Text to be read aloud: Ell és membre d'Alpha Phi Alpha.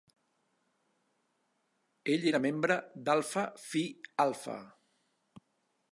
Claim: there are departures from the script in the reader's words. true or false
true